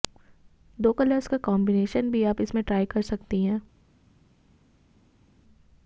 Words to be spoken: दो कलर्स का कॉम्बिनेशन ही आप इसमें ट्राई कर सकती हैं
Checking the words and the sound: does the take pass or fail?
fail